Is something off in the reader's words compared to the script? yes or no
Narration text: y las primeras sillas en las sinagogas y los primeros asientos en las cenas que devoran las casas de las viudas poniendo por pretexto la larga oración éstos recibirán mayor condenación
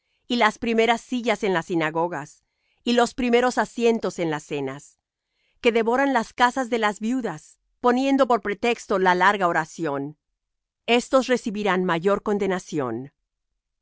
no